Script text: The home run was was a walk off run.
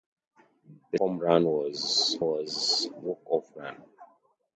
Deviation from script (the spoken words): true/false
false